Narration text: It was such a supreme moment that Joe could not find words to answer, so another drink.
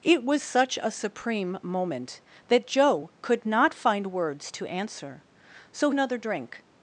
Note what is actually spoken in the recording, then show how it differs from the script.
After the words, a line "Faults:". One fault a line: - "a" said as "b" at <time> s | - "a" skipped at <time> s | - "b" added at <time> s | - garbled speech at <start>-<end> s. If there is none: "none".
It was such a supreme moment that Joe could not find words to answer, so another drink.
Faults:
none